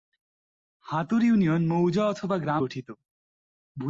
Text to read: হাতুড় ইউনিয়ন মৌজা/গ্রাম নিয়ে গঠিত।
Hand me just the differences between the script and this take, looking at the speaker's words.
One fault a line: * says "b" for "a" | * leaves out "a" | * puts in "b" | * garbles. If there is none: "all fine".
* leaves out "নিয়ে"